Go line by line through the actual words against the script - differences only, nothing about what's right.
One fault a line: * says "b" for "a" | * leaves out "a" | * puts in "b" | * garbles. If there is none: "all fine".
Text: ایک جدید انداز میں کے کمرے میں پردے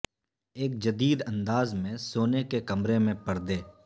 * puts in "سونے"